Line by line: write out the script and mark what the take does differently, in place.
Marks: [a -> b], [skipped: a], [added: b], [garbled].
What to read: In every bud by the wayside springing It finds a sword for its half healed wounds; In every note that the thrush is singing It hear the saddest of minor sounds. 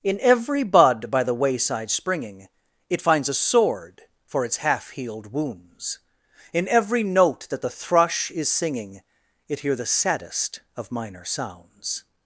In every bud by the wayside springing It finds a sword for its half healed wounds; In every note that the thrush is singing It hear the saddest of minor sounds.